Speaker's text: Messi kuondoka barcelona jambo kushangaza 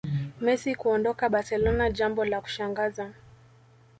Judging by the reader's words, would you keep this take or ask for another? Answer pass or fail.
fail